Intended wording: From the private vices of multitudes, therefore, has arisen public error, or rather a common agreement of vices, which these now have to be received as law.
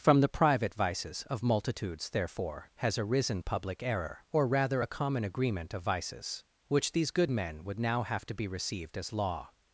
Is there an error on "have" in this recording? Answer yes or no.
no